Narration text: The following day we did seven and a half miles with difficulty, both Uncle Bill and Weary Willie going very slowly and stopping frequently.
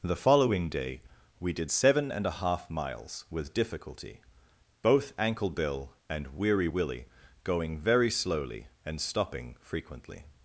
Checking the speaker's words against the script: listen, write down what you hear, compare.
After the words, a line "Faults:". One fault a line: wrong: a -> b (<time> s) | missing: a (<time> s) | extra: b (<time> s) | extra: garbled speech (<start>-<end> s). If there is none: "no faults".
The following day we did seven and a half miles with difficulty, both Ankle Bill and Weary Willie going very slowly and stopping frequently.
Faults:
wrong: Uncle -> Ankle (5.2 s)